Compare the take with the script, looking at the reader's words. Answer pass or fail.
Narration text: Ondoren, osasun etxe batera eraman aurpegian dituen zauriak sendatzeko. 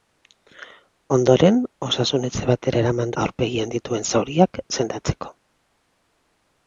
pass